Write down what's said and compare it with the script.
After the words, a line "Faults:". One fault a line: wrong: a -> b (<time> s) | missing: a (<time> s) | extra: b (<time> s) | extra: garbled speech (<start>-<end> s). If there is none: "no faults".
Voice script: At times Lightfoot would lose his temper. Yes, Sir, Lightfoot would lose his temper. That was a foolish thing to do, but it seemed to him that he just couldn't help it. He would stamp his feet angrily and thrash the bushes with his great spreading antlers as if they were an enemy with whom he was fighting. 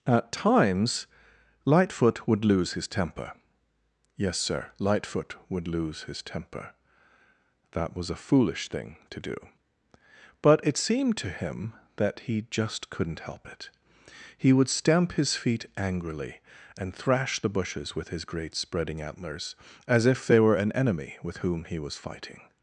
At times Lightfoot would lose his temper. Yes, Sir, Lightfoot would lose his temper. That was a foolish thing to do, but it seemed to him that he just couldn't help it. He would stamp his feet angrily and thrash the bushes with his great spreading antlers as if they were an enemy with whom he was fighting.
Faults:
no faults